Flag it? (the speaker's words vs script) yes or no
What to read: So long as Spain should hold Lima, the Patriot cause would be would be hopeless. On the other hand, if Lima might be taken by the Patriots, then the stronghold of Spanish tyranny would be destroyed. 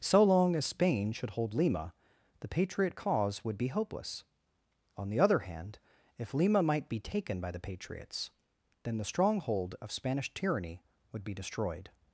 yes